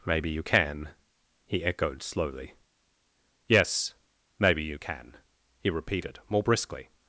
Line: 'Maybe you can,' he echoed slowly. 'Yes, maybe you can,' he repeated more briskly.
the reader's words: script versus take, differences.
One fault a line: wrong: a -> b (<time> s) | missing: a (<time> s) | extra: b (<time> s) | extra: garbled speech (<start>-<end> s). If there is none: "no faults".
no faults